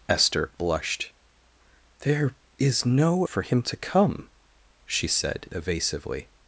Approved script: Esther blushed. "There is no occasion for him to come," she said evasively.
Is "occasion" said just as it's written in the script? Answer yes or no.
no